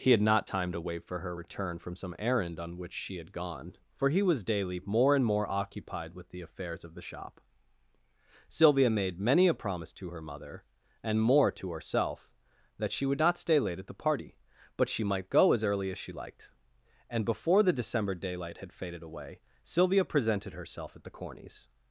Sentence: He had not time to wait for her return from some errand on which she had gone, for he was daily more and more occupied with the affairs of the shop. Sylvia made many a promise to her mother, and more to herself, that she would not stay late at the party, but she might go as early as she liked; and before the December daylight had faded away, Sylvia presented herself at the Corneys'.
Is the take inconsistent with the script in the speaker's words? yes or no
no